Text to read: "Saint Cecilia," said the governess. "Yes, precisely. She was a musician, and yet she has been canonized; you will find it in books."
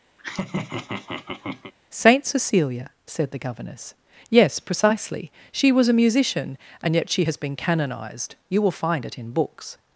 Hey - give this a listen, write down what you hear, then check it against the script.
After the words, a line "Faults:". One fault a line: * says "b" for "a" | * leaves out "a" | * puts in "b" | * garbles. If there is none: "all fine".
"Saint Cecilia," said the governess. "Yes, precisely. She was a musician, and yet she has been canonized; you will find it in books."
Faults:
all fine